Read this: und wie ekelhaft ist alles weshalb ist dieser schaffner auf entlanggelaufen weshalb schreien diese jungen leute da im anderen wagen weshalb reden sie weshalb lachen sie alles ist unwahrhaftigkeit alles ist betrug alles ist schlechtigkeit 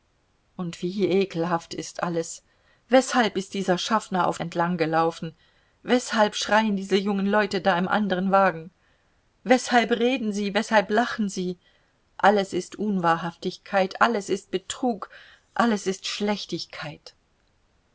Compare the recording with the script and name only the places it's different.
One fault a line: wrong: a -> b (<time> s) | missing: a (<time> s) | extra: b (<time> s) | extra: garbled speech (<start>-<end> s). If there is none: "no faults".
no faults